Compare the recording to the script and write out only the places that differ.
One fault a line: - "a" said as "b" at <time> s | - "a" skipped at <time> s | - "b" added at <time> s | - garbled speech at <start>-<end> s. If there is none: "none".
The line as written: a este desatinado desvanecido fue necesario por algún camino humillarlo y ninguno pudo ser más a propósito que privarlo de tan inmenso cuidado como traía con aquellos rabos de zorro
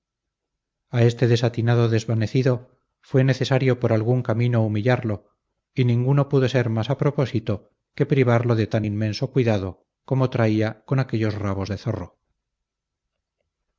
none